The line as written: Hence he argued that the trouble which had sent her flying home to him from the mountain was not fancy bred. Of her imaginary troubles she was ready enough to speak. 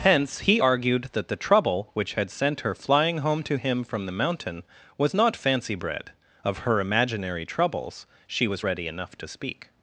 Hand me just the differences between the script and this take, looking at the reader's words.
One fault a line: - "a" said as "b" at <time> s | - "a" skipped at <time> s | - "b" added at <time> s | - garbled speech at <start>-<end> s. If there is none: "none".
none